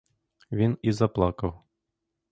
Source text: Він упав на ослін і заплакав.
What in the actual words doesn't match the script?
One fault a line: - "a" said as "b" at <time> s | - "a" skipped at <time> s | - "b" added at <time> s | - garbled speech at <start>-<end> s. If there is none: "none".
- "упав на ослін" skipped at 0.8 s